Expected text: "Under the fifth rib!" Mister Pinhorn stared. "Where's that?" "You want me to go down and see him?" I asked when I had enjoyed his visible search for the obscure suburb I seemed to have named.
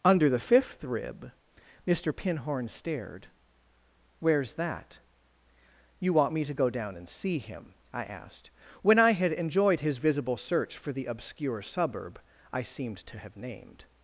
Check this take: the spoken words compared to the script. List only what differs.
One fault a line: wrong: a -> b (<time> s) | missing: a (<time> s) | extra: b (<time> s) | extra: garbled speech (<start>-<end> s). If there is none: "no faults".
no faults